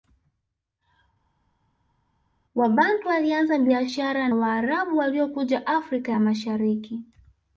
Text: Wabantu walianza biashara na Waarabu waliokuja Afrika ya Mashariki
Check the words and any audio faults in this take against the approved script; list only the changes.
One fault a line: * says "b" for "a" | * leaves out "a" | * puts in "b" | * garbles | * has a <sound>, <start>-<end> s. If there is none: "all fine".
* leaves out "na"